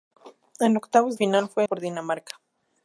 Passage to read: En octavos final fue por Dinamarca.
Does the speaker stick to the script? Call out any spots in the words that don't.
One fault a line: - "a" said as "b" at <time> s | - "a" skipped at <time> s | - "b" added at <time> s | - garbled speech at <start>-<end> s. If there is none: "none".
none